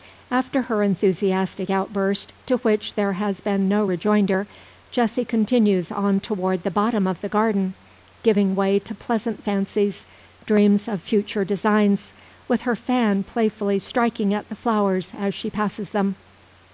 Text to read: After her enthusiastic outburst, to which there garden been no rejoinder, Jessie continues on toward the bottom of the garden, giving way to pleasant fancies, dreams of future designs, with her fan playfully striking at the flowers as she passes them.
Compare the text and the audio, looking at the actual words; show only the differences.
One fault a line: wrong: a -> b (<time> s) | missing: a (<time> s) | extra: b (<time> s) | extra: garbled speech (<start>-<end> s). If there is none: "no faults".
wrong: garden -> has (3.1 s)